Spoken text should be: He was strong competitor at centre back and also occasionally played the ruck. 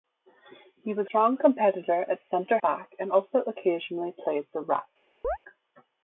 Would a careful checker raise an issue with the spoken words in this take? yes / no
no